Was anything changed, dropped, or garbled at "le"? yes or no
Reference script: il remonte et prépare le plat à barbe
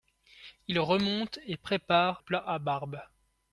yes